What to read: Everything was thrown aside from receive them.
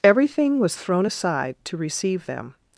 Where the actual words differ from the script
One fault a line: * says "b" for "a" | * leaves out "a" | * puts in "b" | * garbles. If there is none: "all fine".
* says "to" for "from"